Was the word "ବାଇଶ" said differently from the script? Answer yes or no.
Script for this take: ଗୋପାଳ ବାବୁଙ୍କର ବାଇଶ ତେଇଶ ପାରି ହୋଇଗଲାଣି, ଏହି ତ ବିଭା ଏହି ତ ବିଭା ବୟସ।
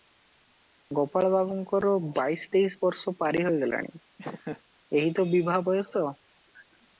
no